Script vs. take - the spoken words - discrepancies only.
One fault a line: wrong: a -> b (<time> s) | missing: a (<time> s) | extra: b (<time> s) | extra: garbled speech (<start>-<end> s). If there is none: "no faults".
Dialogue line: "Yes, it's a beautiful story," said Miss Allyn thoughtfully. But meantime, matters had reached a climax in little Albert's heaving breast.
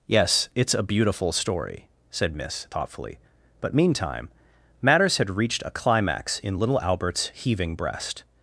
missing: Allyn (2.6 s)